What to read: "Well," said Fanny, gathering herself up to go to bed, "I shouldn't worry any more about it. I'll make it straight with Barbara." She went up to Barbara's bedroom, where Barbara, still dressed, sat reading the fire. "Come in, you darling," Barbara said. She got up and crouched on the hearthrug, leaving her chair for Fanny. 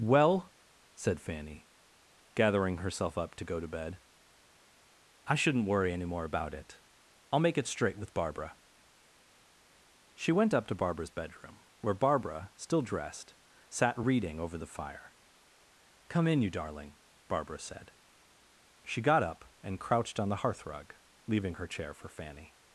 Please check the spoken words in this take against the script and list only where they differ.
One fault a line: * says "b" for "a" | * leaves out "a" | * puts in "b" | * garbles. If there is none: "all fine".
* puts in "over"